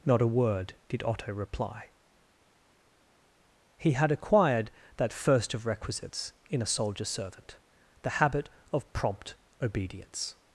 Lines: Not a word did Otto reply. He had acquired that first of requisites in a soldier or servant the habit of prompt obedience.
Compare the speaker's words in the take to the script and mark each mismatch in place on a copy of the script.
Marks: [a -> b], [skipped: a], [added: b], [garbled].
Not a word did Otto reply. He had acquired that first of requisites in a soldier [skipped: or] servant the habit of prompt obedience.